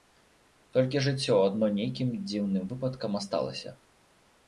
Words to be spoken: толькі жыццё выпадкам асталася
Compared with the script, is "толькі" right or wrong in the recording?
right